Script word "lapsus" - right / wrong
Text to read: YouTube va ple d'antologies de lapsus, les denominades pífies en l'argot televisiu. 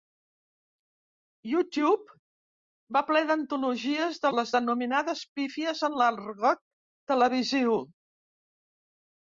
wrong